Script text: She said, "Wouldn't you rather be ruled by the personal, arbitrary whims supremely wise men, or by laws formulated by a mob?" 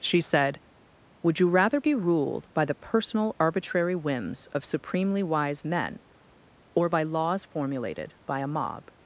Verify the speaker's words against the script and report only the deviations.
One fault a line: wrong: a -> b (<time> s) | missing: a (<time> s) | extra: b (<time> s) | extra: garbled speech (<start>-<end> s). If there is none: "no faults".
wrong: Wouldn't -> Would (1.2 s)
extra: of (4.5 s)